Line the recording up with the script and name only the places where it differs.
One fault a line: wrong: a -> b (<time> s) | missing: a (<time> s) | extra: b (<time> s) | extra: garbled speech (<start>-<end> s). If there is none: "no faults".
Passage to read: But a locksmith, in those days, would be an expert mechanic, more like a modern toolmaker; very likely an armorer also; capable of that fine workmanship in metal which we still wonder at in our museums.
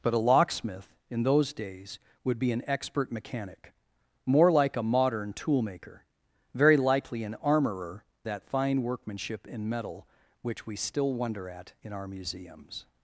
missing: also capable of (8.0 s)